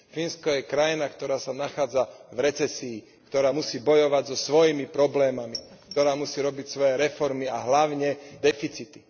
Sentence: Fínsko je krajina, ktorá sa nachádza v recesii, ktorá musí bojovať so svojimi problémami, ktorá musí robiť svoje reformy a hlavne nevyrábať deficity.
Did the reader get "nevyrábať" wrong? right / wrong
wrong